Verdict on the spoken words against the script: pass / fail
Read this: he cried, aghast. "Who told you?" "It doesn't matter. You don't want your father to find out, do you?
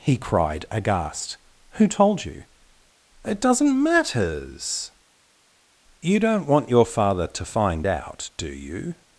fail